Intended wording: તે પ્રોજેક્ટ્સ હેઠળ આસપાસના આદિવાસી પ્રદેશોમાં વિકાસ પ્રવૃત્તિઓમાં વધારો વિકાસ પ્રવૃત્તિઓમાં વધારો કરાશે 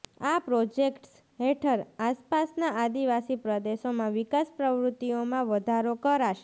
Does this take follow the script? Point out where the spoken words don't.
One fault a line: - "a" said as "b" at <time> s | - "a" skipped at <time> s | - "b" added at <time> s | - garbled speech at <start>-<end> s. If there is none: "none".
- "તે" said as "આ" at 0.2 s
- "વિકાસ પ્રવૃત્તિઓમાં વધારો" skipped at 6.0 s